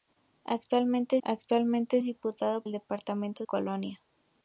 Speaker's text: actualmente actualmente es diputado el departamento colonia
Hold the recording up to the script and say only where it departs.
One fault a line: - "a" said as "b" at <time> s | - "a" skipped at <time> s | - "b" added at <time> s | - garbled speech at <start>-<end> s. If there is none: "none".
none